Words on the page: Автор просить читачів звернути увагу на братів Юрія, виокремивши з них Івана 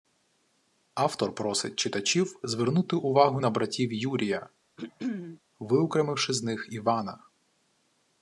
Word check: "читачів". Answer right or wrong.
right